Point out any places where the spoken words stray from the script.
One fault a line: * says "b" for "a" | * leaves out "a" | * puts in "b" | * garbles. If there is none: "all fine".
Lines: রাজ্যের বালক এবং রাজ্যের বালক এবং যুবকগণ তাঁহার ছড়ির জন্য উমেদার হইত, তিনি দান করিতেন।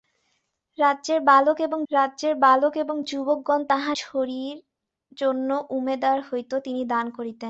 all fine